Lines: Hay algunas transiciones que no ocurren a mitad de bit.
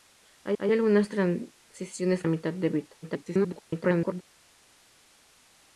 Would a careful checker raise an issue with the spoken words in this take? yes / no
yes